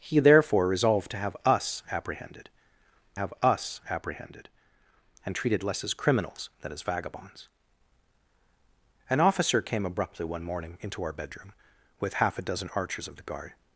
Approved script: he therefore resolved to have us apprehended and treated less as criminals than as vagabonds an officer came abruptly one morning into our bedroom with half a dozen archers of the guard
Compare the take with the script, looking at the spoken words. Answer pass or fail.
fail